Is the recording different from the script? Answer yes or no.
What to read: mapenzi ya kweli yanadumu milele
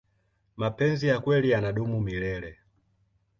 no